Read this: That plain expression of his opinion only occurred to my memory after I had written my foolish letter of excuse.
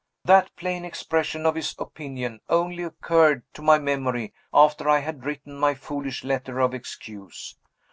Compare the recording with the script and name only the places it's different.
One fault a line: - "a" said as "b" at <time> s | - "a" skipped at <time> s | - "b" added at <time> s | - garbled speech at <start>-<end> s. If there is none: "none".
none